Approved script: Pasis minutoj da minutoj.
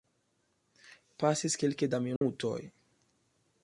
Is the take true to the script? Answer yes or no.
no